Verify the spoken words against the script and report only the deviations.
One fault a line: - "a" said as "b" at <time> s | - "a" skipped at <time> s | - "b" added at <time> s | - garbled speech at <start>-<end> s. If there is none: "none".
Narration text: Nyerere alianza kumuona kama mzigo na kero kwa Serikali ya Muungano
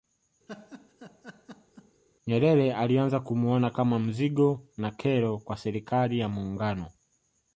none